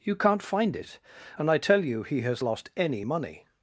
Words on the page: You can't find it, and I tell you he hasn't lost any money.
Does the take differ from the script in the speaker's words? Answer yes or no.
yes